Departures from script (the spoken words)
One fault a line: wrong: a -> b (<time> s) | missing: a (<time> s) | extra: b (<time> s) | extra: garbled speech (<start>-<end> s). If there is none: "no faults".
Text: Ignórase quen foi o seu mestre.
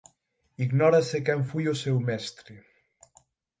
no faults